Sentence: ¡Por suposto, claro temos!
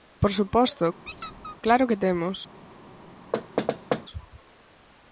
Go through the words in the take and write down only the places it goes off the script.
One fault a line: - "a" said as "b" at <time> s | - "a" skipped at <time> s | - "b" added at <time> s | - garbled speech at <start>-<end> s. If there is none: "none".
- "que" added at 1.9 s